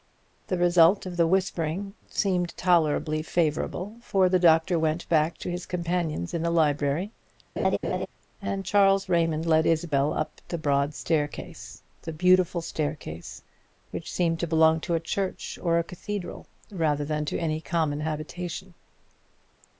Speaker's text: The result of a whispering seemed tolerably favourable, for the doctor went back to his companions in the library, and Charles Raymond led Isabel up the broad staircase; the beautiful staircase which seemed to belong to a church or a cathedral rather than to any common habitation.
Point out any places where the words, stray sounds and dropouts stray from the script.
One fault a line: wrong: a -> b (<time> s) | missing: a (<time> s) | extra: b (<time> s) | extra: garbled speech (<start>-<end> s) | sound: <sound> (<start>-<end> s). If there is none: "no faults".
wrong: a -> the (1.1 s)
sound: laugh (7.6-8.1 s)